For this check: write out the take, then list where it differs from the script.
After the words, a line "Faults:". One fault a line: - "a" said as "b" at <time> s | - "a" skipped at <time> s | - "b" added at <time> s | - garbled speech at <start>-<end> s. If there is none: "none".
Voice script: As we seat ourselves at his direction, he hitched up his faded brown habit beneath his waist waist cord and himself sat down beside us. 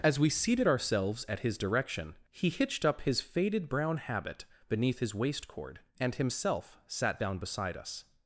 As we seated ourselves at his direction, he hitched up his faded brown habit beneath his waist cord and himself sat down beside us.
Faults:
- "seat" said as "seated" at 0.3 s
- "waist" skipped at 5.5 s